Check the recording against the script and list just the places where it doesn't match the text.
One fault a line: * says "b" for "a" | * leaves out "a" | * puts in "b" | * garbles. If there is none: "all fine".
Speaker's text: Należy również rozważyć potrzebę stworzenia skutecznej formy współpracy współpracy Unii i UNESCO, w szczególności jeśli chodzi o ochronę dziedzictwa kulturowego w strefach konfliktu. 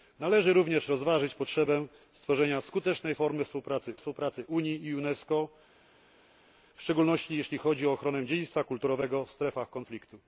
all fine